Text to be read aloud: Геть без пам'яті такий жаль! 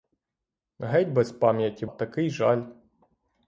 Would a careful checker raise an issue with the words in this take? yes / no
no